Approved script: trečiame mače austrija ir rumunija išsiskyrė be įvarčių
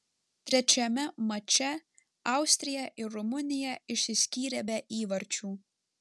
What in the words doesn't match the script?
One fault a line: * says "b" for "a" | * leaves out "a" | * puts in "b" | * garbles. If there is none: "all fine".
all fine